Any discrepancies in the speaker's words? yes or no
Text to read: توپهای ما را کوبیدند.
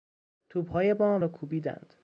no